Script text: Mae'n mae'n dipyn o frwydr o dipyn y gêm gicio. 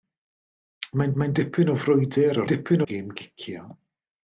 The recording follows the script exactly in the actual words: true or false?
true